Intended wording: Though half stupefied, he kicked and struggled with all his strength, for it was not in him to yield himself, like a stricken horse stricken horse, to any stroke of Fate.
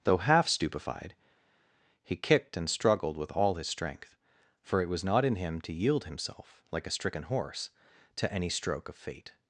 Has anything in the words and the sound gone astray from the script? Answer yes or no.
yes